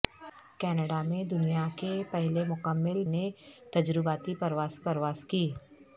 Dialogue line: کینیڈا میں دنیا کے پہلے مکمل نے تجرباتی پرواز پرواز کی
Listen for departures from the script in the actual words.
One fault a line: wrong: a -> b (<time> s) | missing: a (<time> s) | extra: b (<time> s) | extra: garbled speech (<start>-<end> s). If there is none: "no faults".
no faults